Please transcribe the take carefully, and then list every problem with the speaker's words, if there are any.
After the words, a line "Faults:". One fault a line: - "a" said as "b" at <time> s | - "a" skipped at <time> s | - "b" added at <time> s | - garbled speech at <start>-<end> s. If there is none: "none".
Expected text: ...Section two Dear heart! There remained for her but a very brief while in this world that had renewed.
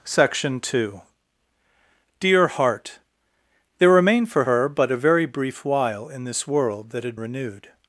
...Section two Dear heart! There remained for her but a very brief while in this world that had renewed.
Faults:
none